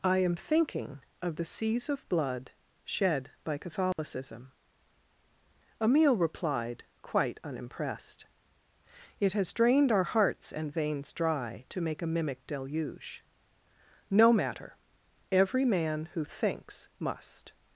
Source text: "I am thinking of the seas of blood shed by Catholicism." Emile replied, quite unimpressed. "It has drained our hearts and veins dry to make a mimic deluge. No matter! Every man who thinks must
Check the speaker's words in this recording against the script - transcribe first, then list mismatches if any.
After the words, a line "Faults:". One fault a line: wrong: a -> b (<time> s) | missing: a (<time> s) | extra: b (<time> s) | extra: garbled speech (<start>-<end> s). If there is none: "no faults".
"I am thinking of the seas of blood shed by Catholicism." Emile replied, quite unimpressed. "It has drained our hearts and veins dry to make a mimic deluge. No matter! Every man who thinks must
Faults:
no faults